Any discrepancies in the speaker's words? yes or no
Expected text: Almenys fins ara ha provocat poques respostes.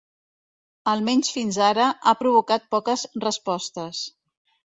no